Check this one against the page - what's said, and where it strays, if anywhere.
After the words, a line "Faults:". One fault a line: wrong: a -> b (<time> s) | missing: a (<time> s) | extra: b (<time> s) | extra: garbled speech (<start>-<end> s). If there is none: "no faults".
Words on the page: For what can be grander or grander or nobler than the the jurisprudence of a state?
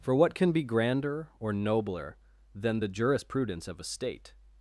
For what can be grander or nobler than the jurisprudence of a state?
Faults:
missing: grander or (1.5 s)
missing: the (2.9 s)